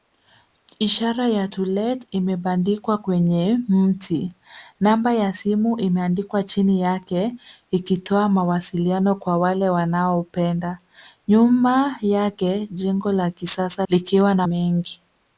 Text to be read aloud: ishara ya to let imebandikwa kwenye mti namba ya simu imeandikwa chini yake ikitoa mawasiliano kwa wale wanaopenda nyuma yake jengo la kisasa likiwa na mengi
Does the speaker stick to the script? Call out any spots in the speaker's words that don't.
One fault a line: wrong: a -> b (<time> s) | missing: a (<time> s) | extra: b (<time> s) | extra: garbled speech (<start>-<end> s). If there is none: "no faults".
no faults